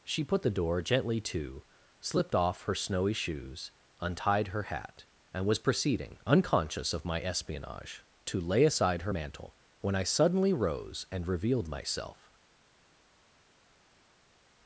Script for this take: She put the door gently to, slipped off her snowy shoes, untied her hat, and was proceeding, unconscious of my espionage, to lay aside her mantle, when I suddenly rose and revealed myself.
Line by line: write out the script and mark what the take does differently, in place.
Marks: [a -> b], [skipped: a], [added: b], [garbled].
She put the door gently to, slipped off her snowy shoes, untied her hat, and was proceeding, unconscious of my espionage, to lay aside her mantle, when I suddenly rose and revealed myself.